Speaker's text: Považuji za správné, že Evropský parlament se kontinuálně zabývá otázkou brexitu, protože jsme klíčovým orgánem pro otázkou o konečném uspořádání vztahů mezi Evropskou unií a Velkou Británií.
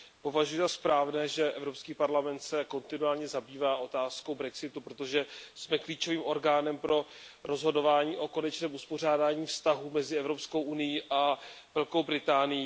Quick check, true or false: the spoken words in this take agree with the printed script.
false